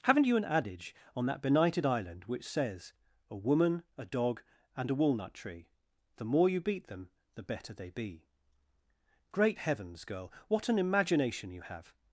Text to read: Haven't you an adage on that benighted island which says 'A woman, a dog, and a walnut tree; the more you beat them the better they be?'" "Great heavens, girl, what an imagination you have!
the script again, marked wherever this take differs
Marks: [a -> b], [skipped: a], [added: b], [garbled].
Haven't you an adage on that benighted island which says 'A woman, a dog, and a walnut tree; the more you beat them the better they be?'" "Great heavens, girl, what an imagination you have!